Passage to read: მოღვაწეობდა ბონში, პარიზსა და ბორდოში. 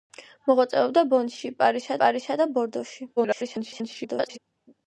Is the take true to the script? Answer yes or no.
no